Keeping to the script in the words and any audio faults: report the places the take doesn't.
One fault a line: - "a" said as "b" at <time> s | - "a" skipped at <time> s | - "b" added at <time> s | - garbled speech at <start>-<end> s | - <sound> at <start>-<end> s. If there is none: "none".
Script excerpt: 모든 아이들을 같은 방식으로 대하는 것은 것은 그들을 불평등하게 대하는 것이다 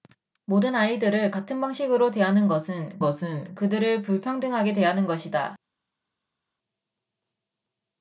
none